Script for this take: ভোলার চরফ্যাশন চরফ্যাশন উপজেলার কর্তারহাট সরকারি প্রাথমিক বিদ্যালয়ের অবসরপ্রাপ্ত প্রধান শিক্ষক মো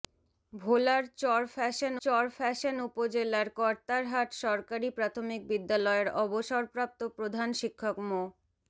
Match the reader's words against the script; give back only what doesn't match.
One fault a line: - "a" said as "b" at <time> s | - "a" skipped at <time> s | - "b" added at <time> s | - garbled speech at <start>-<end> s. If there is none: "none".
none